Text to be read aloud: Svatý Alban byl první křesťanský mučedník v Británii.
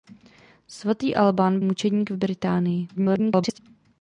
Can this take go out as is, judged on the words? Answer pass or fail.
fail